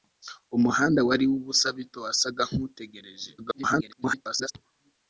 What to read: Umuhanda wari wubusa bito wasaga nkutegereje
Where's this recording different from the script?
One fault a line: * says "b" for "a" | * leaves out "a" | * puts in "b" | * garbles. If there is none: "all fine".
* garbles